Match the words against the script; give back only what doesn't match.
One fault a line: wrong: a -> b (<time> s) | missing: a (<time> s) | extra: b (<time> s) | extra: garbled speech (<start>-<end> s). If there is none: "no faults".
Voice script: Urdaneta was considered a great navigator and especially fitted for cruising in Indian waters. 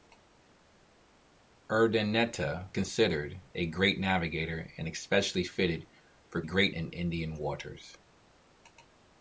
missing: was (2.8 s)
wrong: cruising -> great (6.4 s)